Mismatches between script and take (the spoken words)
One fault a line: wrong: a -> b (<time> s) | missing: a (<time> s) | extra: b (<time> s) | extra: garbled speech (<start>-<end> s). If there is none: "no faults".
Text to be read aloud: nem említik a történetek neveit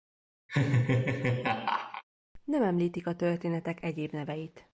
extra: egyéb (3.8 s)